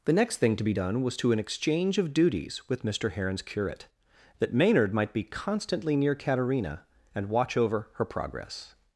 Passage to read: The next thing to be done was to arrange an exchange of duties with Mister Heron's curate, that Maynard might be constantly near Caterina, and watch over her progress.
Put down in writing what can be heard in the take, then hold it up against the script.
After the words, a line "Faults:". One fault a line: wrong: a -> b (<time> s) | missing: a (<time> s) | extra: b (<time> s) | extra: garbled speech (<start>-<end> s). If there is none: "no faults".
The next thing to be done was to an exchange of duties with Mister Heron's curate, that Maynard might be constantly near Caterina, and watch over her progress.
Faults:
missing: arrange (1.3 s)